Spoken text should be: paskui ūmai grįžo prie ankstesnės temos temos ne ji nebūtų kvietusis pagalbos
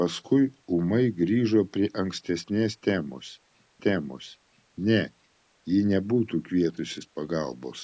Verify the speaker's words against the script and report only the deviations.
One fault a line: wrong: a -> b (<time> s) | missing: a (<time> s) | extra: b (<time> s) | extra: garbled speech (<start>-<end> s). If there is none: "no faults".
no faults